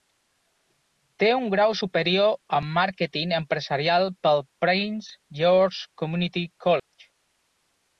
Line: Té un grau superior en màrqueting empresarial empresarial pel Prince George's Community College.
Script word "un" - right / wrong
right